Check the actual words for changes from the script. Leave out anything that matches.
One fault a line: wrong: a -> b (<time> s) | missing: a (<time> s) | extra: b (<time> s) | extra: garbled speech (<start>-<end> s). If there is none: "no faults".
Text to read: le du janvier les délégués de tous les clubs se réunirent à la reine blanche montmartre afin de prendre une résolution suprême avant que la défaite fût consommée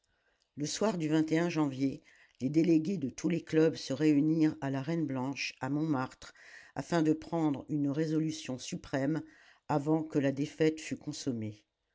extra: soir (0.7 s)
extra: à (5.6 s)